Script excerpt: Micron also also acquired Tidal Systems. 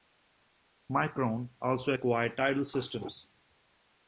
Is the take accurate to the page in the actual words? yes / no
no